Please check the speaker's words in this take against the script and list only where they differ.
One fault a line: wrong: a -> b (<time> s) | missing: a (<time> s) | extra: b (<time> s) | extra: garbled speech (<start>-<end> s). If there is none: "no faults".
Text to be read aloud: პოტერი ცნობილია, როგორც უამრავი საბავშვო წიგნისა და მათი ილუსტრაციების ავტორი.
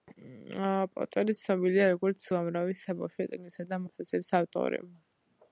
missing: მათი (3.8 s)